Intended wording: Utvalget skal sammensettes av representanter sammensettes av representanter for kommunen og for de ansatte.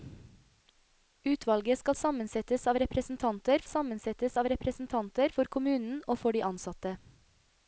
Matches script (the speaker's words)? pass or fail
pass